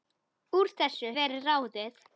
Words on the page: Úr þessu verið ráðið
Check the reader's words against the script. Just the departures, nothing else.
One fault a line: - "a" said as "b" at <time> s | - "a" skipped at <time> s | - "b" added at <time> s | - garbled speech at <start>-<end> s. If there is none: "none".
none